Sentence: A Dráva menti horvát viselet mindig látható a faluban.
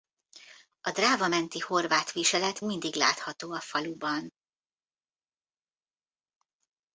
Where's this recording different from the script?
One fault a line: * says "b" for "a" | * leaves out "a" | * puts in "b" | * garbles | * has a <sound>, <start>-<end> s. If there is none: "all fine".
all fine